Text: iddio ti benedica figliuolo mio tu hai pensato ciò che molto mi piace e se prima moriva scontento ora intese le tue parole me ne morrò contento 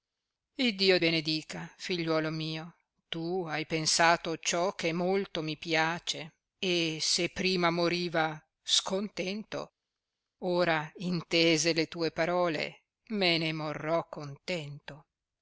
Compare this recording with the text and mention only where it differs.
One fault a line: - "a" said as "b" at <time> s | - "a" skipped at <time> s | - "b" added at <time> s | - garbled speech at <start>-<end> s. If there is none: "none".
- "ti" skipped at 1.0 s